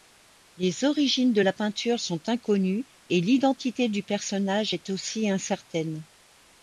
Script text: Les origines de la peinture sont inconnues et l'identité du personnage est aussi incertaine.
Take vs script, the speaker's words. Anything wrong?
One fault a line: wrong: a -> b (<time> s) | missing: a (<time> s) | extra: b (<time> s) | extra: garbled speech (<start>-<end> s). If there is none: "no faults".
no faults